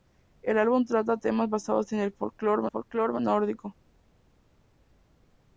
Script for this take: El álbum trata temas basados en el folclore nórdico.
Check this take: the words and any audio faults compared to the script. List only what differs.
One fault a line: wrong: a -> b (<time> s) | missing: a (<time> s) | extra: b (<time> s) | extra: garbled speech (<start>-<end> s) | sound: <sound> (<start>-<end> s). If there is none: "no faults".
extra: folclore (2.6 s)